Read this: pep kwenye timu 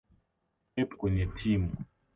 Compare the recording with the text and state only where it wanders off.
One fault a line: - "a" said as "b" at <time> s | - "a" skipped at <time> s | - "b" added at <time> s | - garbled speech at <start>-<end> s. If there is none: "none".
none